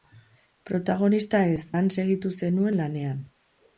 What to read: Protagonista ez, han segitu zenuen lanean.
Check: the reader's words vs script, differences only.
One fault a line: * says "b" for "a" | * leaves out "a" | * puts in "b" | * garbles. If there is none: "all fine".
all fine